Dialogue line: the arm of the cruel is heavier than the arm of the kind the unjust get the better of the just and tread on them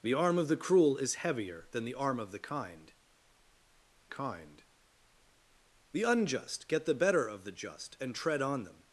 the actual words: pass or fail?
fail